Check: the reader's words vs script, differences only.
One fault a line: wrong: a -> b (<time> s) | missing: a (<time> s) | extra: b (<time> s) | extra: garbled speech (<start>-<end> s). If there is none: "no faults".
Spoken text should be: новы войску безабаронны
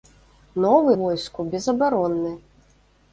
no faults